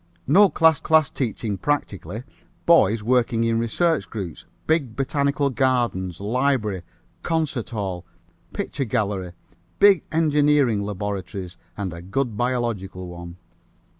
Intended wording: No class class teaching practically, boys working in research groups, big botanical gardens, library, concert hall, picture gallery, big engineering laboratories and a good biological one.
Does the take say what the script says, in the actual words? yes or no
yes